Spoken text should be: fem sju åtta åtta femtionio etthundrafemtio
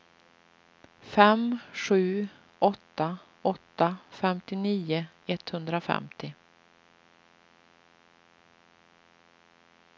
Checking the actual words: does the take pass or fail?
pass